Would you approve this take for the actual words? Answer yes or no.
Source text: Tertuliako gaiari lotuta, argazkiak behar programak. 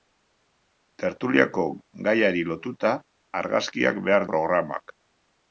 yes